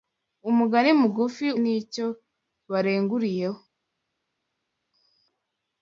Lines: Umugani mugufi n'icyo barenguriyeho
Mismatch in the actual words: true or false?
false